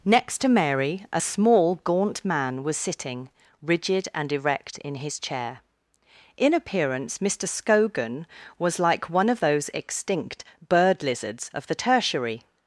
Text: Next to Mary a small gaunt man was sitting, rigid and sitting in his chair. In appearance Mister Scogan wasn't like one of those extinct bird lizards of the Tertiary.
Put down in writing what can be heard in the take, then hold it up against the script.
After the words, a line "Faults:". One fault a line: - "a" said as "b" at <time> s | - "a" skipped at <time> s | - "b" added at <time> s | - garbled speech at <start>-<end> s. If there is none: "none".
Next to Mary a small gaunt man was sitting, rigid and erect in his chair. In appearance Mister Scogan was like one of those extinct bird lizards of the Tertiary.
Faults:
- "sitting" said as "erect" at 4.3 s
- "wasn't" said as "was" at 8.6 s